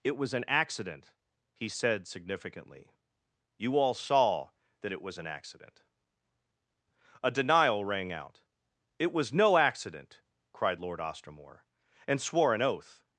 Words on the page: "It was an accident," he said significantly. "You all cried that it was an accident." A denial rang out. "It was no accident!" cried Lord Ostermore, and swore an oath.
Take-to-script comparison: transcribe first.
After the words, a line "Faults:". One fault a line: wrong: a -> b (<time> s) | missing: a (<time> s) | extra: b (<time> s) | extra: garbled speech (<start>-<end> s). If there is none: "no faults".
"It was an accident," he said significantly. "You all saw that it was an accident." A denial rang out. "It was no accident!" cried Lord Ostermore, and swore an oath.
Faults:
wrong: cried -> saw (3.9 s)